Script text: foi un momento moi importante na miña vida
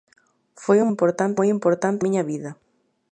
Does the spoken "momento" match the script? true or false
false